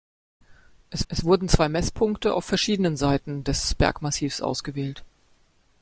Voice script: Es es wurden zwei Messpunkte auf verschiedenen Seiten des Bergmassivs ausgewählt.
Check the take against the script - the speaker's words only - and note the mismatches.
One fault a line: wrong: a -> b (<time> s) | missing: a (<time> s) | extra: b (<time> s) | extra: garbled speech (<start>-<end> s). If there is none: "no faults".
no faults